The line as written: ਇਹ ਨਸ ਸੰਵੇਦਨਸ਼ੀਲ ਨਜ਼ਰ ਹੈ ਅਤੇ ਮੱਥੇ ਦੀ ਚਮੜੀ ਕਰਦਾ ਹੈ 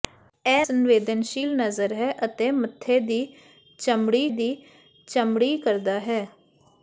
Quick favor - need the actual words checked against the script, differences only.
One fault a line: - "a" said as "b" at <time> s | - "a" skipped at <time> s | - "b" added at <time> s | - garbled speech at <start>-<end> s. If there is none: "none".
- "ਨਸ" skipped at 0.7 s
- "ਦੀ ਚਮੜੀ" added at 4.3 s